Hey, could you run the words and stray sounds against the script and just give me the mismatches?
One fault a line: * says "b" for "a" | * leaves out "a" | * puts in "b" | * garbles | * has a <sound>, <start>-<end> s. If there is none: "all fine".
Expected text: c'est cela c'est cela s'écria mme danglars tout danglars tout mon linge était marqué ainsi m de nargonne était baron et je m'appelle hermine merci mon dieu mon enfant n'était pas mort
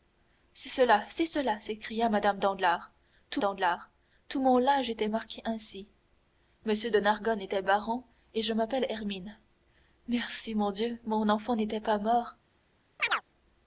* has a chirp, 13.0-13.2 s